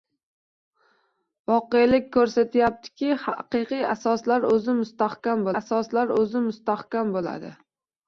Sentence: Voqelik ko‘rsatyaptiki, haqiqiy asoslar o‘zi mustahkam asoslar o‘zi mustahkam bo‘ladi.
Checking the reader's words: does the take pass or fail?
pass